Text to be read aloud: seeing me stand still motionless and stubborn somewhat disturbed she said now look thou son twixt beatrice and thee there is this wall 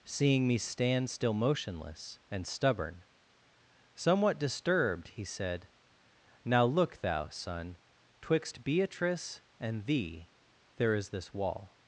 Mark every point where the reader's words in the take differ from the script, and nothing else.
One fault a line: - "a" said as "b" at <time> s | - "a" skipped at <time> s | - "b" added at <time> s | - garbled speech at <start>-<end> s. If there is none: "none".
- "she" said as "he" at 5.1 s